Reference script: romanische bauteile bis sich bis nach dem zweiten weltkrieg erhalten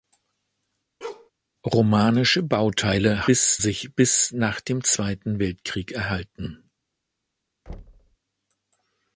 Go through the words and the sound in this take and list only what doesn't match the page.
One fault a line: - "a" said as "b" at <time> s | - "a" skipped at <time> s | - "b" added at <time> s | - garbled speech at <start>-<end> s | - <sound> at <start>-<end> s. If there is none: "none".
- bark at 1.0-1.3 s
- thud at 7.7-8.2 s